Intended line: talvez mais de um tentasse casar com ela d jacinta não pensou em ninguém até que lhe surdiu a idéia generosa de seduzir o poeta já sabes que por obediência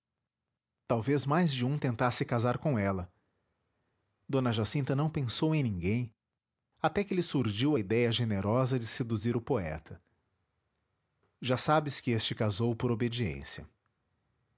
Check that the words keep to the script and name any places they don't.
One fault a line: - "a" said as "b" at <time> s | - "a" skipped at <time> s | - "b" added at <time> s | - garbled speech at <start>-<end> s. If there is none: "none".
- "este casou" added at 12.1 s